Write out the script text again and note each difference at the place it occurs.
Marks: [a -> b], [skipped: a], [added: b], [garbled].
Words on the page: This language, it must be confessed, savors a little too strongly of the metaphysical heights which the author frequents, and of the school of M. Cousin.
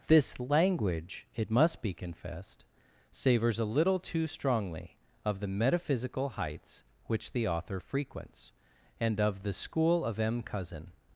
This language, it must be confessed, savors a little too strongly of the metaphysical heights which the author frequents, and of the school of M. Cousin.